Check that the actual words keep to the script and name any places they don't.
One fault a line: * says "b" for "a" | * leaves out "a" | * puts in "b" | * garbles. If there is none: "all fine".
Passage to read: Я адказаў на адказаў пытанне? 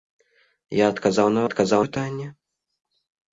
all fine